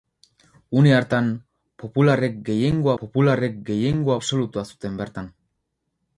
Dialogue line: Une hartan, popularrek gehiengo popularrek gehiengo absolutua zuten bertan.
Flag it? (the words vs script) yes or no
no